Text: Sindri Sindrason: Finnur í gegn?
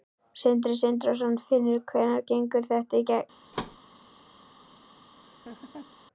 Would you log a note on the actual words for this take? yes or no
yes